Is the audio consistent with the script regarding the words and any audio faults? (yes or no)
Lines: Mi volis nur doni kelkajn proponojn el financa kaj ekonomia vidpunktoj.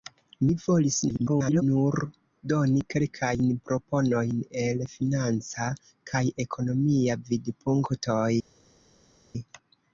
no